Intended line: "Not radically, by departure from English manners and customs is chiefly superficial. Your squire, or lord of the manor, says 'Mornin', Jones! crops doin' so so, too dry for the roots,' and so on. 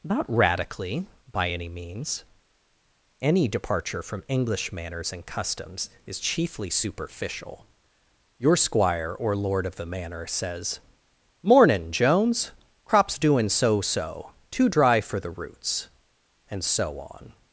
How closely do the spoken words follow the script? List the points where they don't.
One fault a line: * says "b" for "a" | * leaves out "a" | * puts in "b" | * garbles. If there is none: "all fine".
* puts in "any means Any"